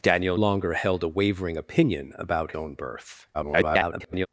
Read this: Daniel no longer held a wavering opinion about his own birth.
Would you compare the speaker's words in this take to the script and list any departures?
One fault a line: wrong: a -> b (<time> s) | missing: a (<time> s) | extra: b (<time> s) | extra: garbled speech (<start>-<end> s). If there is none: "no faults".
missing: no (0.4 s)
missing: his (2.5 s)
extra: garbled speech (3.3-4.3 s)